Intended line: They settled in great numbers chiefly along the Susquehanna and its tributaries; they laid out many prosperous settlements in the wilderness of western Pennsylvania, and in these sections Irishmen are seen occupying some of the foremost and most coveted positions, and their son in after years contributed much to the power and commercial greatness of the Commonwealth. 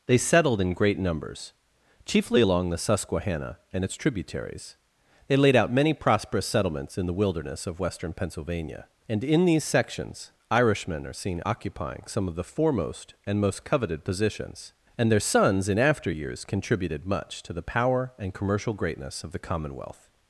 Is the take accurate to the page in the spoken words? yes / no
no